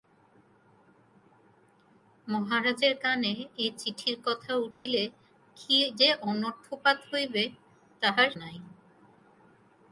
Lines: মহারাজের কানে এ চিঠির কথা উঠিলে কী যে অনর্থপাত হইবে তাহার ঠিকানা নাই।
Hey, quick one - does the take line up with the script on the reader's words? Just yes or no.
no